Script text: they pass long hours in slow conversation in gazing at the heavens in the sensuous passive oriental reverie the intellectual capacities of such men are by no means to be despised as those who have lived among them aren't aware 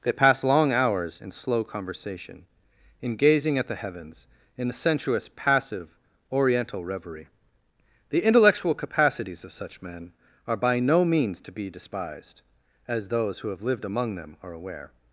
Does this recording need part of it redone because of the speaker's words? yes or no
yes